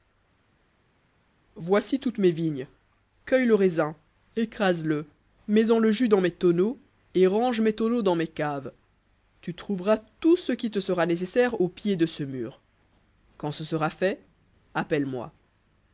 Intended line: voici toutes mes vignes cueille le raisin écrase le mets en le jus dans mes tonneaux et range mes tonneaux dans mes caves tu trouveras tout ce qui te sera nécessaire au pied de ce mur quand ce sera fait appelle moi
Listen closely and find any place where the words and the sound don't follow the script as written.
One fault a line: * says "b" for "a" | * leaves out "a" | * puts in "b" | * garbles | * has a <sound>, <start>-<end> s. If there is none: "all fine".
all fine